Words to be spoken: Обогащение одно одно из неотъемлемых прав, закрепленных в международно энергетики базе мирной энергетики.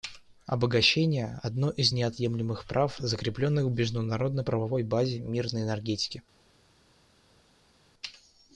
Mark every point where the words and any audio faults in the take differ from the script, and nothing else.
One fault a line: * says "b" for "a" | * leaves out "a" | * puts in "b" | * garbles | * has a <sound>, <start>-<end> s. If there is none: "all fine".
* leaves out "одно"
* says "правовой" for "энергетики"